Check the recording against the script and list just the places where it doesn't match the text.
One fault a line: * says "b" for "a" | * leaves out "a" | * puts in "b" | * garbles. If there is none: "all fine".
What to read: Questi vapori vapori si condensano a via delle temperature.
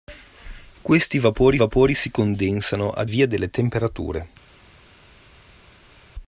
all fine